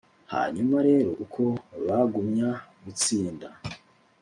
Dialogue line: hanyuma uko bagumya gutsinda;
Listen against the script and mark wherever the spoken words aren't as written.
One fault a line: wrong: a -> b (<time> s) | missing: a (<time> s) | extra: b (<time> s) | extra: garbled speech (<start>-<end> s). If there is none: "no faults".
extra: rero (0.9 s)